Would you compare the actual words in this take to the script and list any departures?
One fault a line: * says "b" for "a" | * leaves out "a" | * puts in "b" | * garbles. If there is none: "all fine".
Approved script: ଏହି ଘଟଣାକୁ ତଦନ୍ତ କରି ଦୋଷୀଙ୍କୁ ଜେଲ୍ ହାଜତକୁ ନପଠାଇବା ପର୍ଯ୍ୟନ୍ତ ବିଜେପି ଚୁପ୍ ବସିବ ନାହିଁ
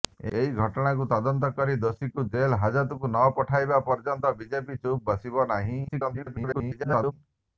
* garbles